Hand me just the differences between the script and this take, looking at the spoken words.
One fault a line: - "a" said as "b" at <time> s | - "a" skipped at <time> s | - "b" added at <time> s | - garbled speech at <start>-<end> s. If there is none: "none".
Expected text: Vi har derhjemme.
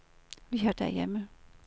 none